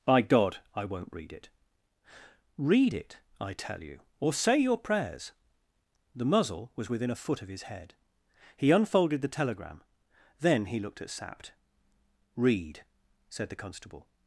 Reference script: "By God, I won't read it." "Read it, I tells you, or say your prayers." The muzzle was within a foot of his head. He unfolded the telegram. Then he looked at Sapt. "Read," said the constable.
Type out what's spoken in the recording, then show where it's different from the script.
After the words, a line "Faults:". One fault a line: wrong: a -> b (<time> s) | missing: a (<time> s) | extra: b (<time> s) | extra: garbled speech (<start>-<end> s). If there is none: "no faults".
"By God, I won't read it." "Read it, I tell you, or say your prayers." The muzzle was within a foot of his head. He unfolded the telegram. Then he looked at Sapt. "Read," said the constable.
Faults:
wrong: tells -> tell (3.5 s)